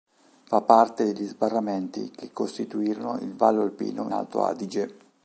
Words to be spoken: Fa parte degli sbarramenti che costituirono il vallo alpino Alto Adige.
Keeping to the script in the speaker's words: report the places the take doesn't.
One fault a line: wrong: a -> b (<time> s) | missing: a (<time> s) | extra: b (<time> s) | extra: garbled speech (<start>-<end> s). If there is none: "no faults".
no faults